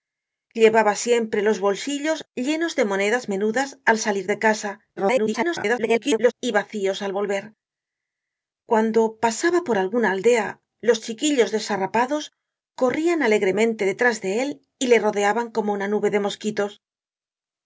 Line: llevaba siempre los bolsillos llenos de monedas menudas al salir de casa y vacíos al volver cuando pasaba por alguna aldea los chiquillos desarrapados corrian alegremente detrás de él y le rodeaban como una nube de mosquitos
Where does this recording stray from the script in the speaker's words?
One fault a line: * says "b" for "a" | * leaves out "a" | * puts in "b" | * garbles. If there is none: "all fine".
* garbles